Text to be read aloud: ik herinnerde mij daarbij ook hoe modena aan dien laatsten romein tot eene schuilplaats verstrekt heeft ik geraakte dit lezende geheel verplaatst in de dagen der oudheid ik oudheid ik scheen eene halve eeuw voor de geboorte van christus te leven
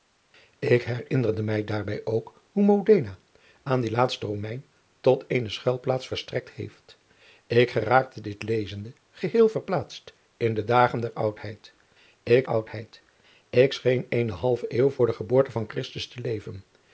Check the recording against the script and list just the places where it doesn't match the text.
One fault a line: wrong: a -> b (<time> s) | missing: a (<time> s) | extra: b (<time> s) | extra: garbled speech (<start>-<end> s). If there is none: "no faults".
no faults